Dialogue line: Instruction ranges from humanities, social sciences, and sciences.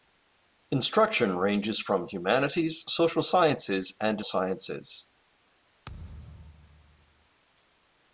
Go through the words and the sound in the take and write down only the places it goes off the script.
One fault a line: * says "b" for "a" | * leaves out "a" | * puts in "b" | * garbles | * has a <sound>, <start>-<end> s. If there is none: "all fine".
* has a thud, 5.8-7.3 s